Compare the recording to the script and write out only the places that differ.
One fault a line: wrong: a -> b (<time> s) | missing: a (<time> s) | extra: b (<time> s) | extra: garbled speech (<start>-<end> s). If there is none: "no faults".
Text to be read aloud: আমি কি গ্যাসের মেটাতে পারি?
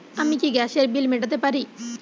extra: বিল (0.9 s)